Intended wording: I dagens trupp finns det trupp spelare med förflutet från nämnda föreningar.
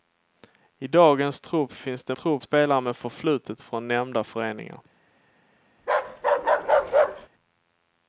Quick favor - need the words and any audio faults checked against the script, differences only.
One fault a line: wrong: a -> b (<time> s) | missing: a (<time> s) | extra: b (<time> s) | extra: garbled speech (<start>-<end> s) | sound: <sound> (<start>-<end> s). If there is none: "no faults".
sound: bark (5.8-7.3 s)